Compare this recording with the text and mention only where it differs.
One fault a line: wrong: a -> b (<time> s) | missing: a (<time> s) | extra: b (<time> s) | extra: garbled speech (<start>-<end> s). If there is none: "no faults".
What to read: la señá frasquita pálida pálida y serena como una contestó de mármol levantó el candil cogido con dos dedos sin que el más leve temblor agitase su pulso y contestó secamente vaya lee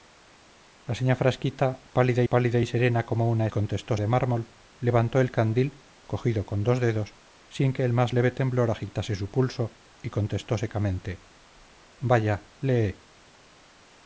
no faults